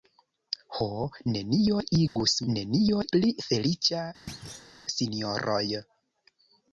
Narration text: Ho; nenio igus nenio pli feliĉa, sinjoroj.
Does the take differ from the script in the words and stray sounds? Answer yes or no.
yes